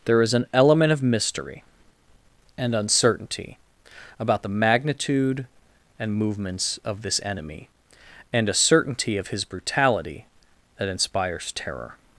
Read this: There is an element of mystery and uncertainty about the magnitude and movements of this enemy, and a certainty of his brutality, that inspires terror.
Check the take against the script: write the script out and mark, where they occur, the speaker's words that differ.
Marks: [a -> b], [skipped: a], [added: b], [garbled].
There is an element of mystery and uncertainty about the magnitude and movements of this enemy, and a certainty of his brutality, that inspires terror.